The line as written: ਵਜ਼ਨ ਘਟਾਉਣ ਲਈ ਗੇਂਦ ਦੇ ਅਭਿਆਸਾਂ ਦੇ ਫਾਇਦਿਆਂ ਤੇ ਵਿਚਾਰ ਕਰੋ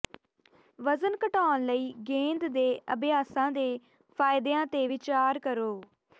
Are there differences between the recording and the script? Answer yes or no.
no